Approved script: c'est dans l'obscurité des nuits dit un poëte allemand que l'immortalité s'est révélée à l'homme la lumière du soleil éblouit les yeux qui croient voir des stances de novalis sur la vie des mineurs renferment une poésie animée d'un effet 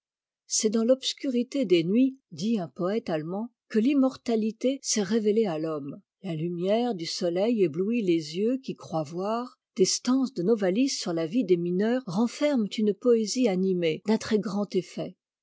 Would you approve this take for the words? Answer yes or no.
no